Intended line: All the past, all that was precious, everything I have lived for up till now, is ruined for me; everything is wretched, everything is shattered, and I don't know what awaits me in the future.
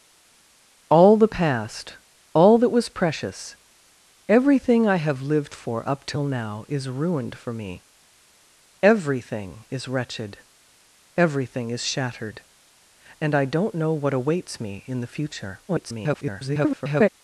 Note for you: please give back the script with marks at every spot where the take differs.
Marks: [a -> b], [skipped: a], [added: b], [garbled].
All the past, all that was precious, everything I have lived for up till now, is ruined for me; everything is wretched, everything is shattered, and I don't know what awaits me in the future. [garbled]